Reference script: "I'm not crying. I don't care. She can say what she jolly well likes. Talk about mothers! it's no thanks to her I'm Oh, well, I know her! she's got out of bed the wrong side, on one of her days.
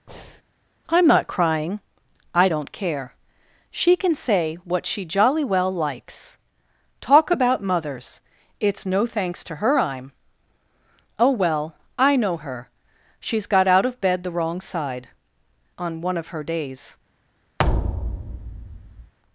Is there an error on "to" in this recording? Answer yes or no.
no